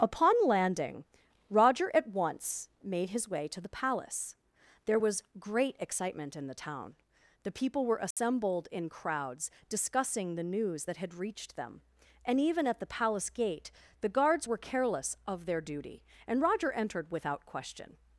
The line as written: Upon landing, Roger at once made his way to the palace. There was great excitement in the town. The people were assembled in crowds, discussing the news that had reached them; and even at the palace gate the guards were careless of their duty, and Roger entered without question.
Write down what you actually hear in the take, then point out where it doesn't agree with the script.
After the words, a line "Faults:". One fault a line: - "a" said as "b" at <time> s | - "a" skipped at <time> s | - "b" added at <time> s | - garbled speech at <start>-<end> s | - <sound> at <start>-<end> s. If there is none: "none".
Upon landing, Roger at once made his way to the palace. There was great excitement in the town. The people were assembled in crowds, discussing the news that had reached them; and even at the palace gate the guards were careless of their duty, and Roger entered without question.
Faults:
- dropout at 8.1-8.2 s